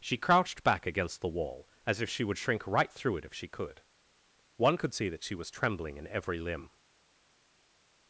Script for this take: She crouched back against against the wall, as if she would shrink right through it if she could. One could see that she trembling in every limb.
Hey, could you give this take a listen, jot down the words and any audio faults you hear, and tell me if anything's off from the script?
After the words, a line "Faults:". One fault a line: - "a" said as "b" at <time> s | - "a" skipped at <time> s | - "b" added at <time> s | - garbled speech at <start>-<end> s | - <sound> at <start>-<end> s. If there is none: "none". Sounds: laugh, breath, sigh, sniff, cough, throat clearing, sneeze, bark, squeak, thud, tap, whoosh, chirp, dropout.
She crouched back against the wall, as if she would shrink right through it if she could. One could see that she was trembling in every limb.
Faults:
- "against" skipped at 1.2 s
- "was" added at 5.3 s